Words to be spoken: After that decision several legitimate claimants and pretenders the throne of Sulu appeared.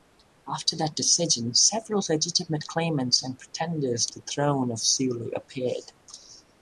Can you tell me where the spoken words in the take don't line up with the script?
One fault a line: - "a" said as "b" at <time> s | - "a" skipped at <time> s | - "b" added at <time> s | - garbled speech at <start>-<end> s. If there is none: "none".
none